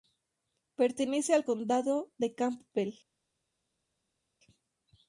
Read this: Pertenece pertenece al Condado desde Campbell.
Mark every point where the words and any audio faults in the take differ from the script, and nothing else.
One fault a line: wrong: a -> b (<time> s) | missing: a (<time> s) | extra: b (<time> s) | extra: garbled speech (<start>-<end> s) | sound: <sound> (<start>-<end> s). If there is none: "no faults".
missing: pertenece (1.4 s)
wrong: desde -> de (2.2 s)